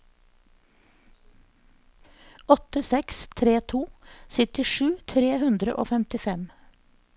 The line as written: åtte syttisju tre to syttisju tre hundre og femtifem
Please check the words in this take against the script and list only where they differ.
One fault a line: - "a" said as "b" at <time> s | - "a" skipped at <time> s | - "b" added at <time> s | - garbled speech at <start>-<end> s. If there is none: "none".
- "syttisju" said as "seks" at 2.9 s